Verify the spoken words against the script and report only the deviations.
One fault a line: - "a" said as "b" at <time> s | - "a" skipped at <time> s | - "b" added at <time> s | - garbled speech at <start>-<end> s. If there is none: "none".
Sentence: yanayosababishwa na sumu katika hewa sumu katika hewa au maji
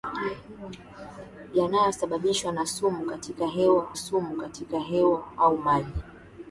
none